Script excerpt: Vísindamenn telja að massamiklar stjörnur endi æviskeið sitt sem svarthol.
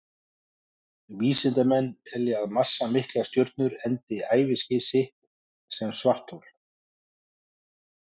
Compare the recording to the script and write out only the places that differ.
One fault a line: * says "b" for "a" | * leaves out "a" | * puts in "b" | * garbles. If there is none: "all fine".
all fine